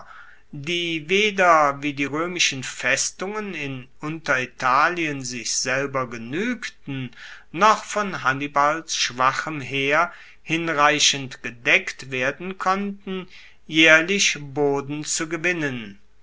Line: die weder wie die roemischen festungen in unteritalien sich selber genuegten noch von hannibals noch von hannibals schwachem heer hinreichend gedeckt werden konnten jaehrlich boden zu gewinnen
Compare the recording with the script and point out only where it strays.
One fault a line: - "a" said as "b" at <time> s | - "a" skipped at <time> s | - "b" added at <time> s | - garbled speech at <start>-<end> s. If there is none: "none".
- "noch von hannibals" skipped at 9.0 s